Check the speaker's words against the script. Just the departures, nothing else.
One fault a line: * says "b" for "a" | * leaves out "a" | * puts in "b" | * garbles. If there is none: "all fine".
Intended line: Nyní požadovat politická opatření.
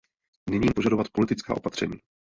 all fine